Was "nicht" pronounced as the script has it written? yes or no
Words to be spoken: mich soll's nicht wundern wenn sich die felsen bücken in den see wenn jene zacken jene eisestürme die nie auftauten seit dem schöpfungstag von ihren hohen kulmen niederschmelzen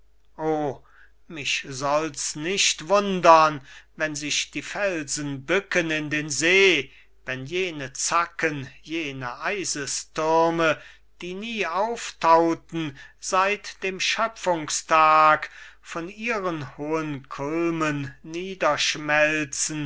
yes